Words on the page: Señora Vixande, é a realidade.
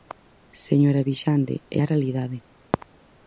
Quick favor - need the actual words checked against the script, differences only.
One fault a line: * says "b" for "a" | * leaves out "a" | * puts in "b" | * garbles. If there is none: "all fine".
all fine